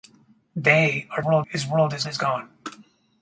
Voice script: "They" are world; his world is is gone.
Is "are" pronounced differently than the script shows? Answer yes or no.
no